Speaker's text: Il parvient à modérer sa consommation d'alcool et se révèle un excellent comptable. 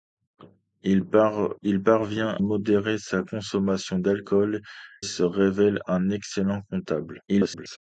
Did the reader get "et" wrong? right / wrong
wrong